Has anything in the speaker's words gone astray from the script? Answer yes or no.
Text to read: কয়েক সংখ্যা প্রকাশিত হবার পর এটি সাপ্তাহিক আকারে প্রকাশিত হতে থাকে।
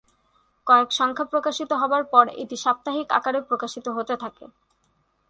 no